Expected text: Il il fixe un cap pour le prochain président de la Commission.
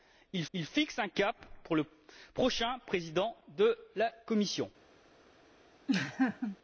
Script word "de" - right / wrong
right